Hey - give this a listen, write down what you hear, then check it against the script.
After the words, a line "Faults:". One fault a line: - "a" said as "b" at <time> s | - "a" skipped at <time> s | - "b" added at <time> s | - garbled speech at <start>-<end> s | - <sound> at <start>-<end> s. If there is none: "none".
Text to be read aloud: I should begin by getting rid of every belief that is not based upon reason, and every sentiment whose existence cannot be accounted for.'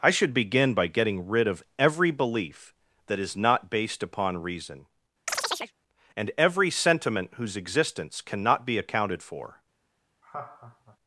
I should begin by getting rid of every belief that is not based upon reason, and every sentiment whose existence cannot be accounted for.'
Faults:
- chirp at 5.3-5.7 s
- laugh at 10.2-11.0 s